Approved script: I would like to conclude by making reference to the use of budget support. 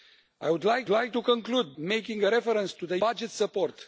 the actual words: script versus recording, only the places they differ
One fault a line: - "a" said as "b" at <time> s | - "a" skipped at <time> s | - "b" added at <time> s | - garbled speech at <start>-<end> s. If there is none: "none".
- "like" added at 0.9 s
- "by" skipped at 1.7 s
- "use of" skipped at 3.0 s